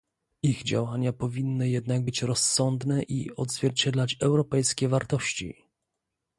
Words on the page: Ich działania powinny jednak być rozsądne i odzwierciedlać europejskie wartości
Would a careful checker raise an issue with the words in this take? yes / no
no